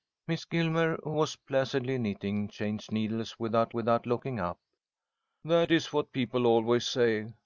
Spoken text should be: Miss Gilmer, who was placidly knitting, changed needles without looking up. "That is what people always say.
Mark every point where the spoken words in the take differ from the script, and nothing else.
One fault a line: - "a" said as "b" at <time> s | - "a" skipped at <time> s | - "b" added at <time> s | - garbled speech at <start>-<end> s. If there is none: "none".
- "without" added at 3.7 s